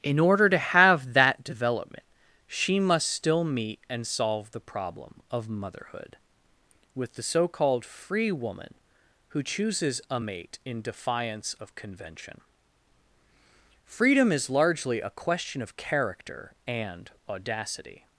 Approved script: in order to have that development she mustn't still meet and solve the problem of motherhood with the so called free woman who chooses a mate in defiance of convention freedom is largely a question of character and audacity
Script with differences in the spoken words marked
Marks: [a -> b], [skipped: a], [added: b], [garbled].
in order to have that development she [mustn't -> must] still meet and solve the problem of motherhood with the so called free woman who chooses a mate in defiance of convention freedom is largely a question of character and audacity